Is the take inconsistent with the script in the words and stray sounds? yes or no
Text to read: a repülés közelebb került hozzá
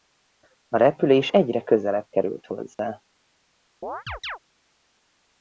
yes